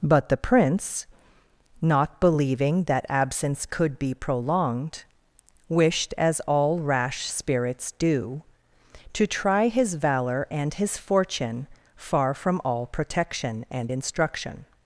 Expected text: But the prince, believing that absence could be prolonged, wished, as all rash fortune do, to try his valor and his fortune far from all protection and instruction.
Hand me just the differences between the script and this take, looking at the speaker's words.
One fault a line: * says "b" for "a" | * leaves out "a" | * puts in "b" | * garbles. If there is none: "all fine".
* puts in "not"
* says "spirits" for "fortune"